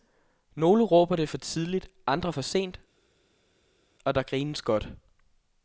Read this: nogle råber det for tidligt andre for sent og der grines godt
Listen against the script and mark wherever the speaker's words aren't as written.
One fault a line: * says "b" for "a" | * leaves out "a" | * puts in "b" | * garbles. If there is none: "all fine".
all fine